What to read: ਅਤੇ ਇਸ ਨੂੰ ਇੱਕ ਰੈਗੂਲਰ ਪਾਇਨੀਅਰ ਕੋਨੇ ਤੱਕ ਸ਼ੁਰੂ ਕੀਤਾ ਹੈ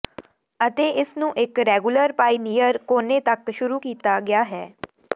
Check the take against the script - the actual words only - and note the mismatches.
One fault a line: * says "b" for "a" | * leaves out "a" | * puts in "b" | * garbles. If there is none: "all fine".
* puts in "ਗਿਆ"